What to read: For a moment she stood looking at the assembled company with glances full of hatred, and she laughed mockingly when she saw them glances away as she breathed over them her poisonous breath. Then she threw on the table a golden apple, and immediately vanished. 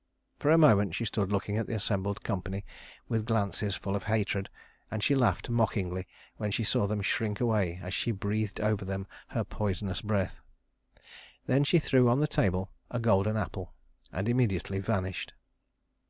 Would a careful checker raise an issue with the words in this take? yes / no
yes